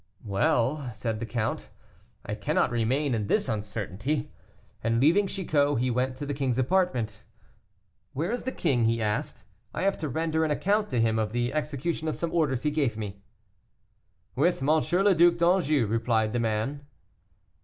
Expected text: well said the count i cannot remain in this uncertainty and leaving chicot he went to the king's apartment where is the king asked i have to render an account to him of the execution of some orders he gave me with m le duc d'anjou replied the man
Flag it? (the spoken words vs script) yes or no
yes